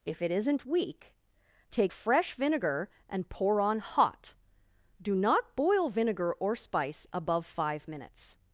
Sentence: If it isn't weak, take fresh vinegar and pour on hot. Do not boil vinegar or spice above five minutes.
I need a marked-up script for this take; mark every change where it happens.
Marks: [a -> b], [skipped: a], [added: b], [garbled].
If it isn't weak, take fresh vinegar and pour on hot. Do not boil vinegar or spice above five minutes.